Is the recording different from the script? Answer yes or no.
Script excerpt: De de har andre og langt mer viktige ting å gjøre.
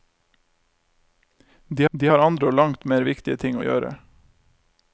no